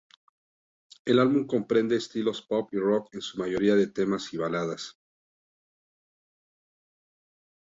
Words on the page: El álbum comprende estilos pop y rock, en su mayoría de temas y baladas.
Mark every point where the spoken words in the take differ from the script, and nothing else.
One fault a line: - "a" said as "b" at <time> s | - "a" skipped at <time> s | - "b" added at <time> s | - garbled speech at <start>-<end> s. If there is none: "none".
none